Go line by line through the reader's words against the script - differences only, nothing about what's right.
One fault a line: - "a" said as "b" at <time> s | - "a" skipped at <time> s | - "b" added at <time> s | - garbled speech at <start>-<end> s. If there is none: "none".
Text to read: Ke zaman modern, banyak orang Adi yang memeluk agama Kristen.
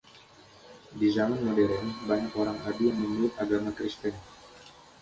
- "Ke" said as "Di" at 1.0 s